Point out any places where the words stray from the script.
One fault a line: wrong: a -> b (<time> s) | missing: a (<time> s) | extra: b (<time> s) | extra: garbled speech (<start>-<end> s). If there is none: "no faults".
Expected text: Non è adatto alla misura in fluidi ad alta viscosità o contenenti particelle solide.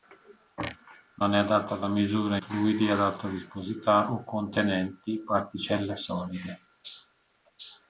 missing: in (2.4 s)